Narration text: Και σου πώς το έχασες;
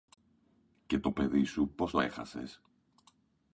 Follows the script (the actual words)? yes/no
no